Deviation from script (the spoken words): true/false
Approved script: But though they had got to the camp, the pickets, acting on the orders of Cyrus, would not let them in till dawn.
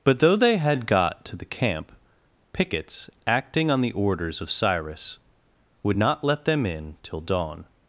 true